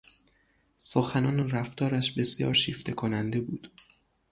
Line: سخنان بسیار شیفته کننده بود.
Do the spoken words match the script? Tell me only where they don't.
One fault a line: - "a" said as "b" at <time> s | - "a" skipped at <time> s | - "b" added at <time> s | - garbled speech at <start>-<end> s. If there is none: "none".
- "و رفتارش" added at 1.4 s